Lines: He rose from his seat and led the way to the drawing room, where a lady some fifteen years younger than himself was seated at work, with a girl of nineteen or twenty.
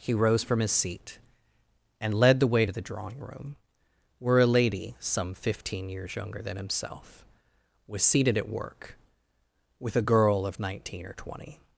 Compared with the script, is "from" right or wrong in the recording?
right